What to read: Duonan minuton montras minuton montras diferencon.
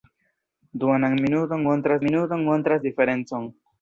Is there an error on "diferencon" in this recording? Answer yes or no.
no